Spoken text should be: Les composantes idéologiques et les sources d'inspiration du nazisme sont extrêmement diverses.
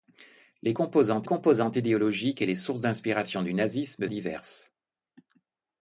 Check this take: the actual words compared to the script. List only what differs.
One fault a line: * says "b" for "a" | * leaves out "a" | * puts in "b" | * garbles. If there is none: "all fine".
* puts in "composantes"
* leaves out "sont extrêmement"